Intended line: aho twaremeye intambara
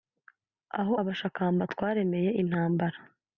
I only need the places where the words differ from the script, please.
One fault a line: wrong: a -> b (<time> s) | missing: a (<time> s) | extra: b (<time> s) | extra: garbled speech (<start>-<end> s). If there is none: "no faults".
extra: abashakamba (1.0 s)